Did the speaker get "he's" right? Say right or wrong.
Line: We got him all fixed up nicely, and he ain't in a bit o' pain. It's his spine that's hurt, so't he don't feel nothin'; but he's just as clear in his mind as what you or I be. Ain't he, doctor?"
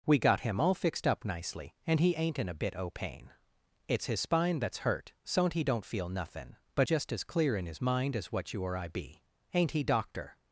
wrong